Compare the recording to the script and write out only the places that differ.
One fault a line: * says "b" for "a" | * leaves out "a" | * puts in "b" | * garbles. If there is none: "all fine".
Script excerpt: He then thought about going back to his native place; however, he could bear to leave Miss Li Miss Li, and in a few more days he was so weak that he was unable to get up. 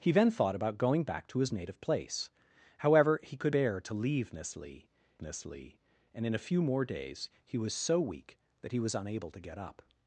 all fine